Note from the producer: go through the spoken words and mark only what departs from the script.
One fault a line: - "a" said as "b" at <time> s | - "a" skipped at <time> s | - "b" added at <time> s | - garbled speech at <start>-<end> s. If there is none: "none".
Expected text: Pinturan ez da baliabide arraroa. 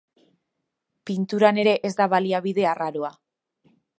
- "ere" added at 1.6 s